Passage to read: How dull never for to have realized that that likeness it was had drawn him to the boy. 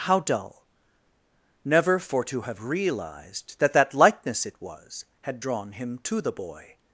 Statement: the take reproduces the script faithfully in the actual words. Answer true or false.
true